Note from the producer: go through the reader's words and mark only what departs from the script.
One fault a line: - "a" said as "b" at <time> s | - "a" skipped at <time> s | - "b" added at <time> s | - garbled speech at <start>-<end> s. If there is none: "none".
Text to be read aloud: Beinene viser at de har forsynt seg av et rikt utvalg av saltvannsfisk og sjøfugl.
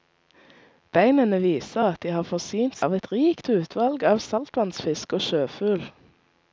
- "seg" skipped at 2.8 s